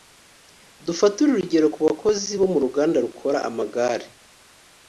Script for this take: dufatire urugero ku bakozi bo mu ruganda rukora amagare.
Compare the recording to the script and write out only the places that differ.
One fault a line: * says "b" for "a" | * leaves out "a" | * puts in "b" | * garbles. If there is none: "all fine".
all fine